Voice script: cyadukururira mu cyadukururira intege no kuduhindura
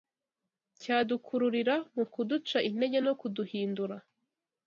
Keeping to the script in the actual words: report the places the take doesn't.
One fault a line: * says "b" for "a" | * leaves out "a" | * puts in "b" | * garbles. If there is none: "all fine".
* says "kuduca" for "cyadukururira"